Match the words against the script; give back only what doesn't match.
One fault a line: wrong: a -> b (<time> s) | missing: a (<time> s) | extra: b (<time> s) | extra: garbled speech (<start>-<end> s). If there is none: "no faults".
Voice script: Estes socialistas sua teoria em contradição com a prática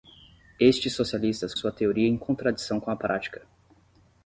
no faults